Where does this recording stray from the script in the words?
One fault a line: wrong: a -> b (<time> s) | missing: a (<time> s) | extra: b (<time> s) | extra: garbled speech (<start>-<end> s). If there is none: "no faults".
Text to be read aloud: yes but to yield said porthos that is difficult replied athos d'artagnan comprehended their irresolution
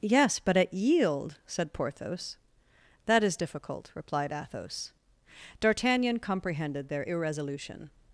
wrong: to -> at (0.6 s)